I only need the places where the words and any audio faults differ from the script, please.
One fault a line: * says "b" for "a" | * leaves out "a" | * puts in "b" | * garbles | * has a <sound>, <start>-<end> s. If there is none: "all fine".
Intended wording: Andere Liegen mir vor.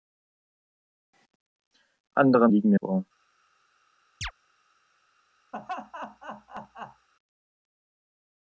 * has a chirp, 4.2-4.3 s
* has a laugh, 5.5-7.1 s